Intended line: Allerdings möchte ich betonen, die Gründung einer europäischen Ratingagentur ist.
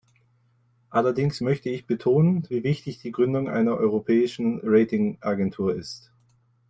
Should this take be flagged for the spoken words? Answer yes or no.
yes